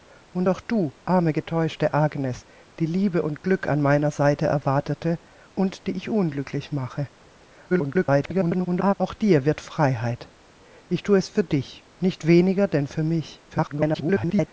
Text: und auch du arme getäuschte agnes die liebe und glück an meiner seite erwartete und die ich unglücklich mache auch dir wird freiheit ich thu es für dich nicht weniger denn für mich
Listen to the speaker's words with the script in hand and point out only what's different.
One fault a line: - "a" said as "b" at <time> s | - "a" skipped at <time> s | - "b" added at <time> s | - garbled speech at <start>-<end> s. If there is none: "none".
- garbled speech at 7.7-8.9 s
- garbled speech at 13.5-14.5 s